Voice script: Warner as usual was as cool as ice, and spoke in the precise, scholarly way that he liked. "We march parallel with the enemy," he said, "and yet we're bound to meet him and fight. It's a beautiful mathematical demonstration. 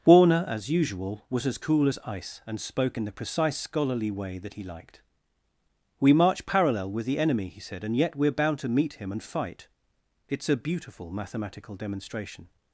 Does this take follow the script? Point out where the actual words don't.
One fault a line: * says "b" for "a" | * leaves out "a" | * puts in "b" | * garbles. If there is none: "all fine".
all fine